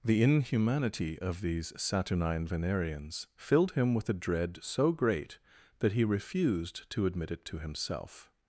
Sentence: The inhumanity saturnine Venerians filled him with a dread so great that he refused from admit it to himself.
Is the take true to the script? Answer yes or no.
no